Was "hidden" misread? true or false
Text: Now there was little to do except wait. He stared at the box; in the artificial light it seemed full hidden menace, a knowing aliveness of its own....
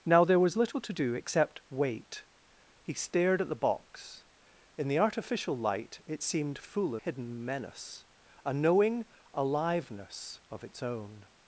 false